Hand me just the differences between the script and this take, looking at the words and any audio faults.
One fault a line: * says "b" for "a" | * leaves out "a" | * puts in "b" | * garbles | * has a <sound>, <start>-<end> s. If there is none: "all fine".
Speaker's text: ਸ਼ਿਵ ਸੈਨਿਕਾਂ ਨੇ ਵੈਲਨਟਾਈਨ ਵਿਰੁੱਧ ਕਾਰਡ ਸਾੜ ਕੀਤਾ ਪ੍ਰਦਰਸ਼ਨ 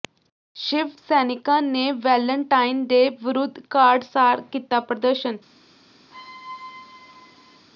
* puts in "ਡੇ"
* has a squeak, 6.1-7.7 s